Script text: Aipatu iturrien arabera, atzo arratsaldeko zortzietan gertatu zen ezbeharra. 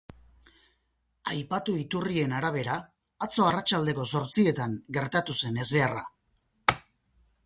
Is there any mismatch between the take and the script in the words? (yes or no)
no